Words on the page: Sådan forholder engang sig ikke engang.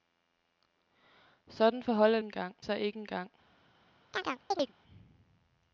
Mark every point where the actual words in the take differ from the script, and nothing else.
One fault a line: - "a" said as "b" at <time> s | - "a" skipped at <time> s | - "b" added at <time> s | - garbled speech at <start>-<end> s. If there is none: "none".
none